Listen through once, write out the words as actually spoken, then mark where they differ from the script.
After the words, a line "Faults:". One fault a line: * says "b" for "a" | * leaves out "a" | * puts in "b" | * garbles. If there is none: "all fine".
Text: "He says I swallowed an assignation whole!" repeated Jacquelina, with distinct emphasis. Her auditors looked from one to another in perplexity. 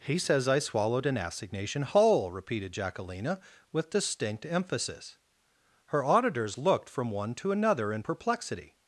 "He says I swallowed an assignation whole!" repeated Jacquelina, with distinct emphasis. Her auditors looked from one to another in perplexity.
Faults:
all fine